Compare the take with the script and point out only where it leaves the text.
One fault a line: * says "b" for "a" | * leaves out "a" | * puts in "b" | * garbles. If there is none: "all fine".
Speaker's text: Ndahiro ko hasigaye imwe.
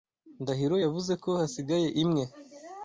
* puts in "yavuze"